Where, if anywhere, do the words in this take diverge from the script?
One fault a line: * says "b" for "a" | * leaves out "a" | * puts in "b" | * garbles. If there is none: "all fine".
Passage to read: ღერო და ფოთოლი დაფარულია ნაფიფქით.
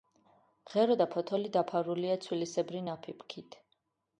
* puts in "ცვილისებრი"